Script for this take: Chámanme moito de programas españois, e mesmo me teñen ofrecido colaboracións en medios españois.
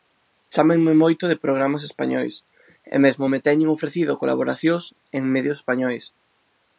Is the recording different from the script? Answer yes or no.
no